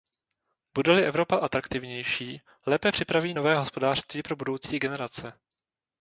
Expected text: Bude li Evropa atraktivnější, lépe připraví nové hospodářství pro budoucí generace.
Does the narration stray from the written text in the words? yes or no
no